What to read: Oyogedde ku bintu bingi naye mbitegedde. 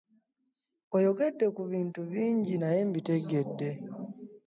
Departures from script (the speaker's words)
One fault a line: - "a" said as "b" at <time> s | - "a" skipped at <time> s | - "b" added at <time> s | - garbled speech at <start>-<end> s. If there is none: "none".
none